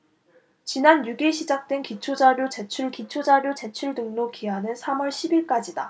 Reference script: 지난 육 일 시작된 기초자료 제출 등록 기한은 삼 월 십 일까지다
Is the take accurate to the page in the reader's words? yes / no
no